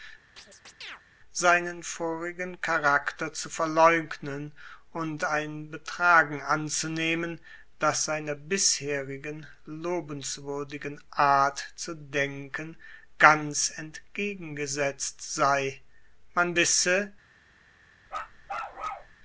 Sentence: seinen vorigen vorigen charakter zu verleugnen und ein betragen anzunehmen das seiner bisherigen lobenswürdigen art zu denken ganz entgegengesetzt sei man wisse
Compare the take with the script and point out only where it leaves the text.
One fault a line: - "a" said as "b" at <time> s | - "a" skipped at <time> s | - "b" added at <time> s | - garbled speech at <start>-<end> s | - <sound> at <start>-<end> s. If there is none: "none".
- chirp at 0.4-1.0 s
- "vorigen" skipped at 2.6 s
- bark at 18.1-19.2 s